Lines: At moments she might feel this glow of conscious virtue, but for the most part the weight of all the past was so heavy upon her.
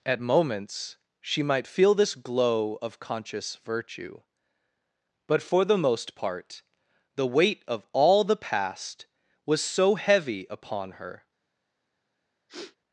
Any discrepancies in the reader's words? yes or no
no